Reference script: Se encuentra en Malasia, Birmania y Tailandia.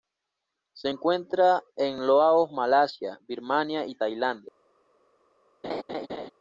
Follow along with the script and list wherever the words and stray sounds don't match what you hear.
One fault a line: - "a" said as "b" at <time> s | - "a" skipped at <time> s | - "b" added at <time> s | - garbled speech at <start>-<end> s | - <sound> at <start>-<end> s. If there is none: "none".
- "Laos" added at 2.1 s
- laugh at 5.6-6.3 s